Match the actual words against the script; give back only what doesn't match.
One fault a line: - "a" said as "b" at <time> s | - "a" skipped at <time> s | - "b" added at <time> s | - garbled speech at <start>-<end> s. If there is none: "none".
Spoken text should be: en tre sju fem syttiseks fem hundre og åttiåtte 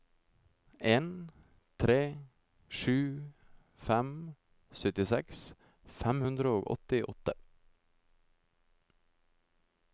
none